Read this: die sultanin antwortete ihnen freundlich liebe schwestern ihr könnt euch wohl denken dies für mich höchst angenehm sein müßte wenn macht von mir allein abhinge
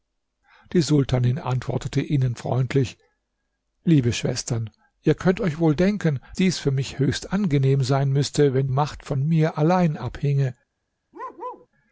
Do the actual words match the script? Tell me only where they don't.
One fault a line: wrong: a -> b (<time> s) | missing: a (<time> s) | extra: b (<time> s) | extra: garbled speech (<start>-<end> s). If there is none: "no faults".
no faults